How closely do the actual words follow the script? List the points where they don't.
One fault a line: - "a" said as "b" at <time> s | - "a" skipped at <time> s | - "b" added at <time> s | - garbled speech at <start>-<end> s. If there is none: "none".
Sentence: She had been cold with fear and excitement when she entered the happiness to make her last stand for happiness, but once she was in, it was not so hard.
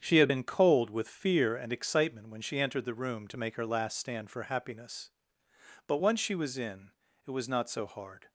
- "happiness" said as "room" at 2.9 s